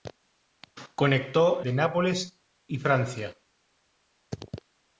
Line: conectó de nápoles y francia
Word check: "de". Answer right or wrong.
right